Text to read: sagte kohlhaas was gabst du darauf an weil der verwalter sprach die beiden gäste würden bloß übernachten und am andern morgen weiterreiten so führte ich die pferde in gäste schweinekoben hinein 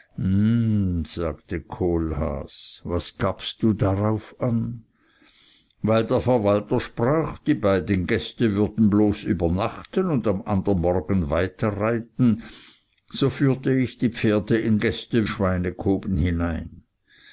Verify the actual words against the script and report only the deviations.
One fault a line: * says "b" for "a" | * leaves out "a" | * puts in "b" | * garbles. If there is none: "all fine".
all fine